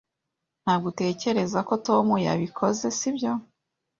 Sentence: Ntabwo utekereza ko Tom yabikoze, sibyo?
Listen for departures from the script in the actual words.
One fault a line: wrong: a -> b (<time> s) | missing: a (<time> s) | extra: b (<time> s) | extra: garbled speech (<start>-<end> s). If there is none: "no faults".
no faults